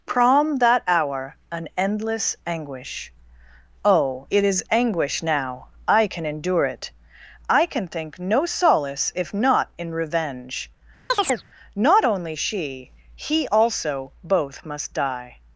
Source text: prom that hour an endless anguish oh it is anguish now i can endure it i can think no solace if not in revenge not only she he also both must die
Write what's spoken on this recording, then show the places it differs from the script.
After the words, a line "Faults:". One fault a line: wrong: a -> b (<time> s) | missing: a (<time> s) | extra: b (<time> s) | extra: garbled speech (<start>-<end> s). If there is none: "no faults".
prom that hour an endless anguish oh it is anguish now i can endure it i can think no solace if not in revenge not only she he also both must die
Faults:
no faults